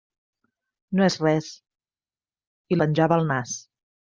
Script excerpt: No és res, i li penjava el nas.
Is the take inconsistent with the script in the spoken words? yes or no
yes